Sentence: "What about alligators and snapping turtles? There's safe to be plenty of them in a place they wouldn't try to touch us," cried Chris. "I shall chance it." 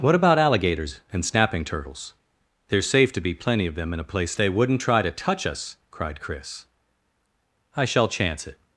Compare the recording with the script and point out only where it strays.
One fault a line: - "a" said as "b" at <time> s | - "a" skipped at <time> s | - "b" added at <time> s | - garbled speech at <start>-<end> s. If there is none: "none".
none